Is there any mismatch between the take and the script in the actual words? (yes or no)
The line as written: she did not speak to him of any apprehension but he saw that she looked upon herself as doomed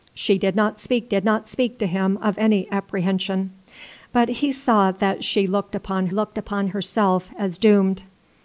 yes